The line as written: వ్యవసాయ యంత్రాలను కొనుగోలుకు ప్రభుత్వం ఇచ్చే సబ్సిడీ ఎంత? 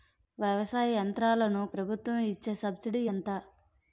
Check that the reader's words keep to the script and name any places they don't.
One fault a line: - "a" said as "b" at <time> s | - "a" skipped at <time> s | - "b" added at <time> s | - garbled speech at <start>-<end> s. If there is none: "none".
- "కొనుగోలుకు" skipped at 1.6 s